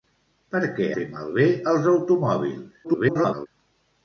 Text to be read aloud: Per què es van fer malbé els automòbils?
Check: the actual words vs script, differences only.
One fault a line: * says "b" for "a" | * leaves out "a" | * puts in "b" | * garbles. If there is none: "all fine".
* leaves out "es van"
* garbles